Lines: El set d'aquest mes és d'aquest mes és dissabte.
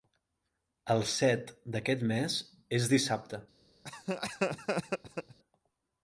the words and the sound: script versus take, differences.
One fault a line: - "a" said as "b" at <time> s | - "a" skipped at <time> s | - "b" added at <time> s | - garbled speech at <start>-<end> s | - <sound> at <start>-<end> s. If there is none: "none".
- "d'aquest mes és" skipped at 2.9 s
- laugh at 3.8-5.4 s